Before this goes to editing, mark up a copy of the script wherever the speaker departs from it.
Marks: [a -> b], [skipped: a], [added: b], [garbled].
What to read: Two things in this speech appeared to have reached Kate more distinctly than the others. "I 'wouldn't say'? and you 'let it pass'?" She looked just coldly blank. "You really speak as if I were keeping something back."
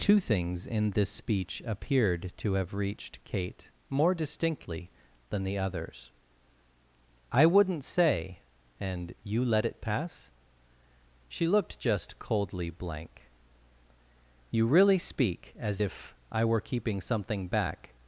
Two things in this speech appeared to have reached Kate more distinctly than the others. "I 'wouldn't say'? and you 'let it pass'?" She looked just coldly blank. "You really speak as if I were keeping something back."